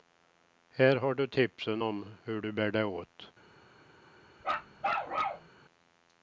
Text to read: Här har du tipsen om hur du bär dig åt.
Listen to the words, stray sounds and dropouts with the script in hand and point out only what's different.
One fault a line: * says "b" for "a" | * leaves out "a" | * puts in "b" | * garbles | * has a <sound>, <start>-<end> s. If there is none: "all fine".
* has a bark, 4.4-5.5 s